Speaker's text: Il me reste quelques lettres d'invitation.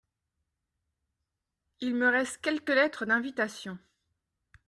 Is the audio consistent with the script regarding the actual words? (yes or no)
yes